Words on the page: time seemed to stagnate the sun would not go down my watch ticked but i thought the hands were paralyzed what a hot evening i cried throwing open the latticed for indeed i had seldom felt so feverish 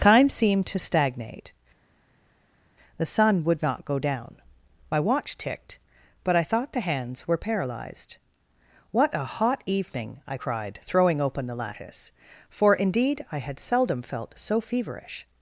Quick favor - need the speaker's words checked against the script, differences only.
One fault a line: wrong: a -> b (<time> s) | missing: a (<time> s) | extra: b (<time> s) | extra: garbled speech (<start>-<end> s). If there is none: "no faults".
wrong: latticed -> lattice (11.6 s)